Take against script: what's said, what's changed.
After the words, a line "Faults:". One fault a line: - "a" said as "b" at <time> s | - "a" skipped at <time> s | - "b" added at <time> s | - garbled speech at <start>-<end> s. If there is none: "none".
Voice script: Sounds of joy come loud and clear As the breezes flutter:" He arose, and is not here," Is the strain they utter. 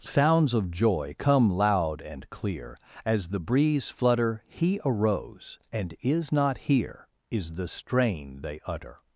Sounds of joy come loud and clear As the breeze flutter:" He arose, and is not here," Is the strain they utter.
Faults:
- "breezes" said as "breeze" at 3.4 s